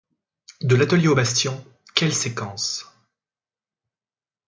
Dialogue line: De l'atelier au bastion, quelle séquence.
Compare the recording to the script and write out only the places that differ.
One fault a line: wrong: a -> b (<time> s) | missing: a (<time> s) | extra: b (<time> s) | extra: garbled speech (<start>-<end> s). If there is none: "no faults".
no faults